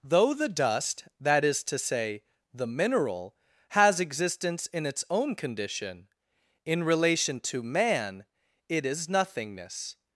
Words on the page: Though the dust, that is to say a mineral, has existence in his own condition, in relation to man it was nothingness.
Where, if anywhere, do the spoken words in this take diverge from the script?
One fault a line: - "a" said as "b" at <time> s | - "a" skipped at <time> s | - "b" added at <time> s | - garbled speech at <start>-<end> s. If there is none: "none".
- "a" said as "the" at 2.5 s
- "his" said as "its" at 4.8 s
- "was" said as "is" at 8.8 s